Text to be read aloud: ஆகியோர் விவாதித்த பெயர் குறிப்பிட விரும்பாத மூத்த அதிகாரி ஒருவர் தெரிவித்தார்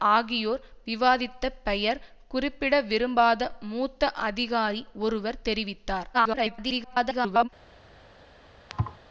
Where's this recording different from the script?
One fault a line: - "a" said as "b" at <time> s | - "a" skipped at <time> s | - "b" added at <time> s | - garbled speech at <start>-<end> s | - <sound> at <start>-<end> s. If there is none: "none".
- garbled speech at 6.1-7.5 s
- thud at 8.7-9.0 s